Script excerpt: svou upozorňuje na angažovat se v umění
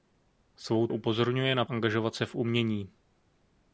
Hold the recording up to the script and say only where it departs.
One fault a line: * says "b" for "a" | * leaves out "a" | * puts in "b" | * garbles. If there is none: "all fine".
all fine